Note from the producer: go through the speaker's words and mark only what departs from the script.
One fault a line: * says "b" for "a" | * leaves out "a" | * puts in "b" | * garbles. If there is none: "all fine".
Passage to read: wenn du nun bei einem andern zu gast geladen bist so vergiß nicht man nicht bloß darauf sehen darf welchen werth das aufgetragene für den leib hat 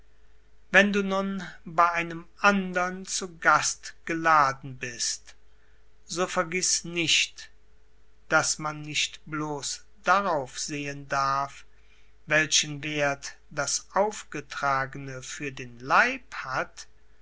* puts in "daß"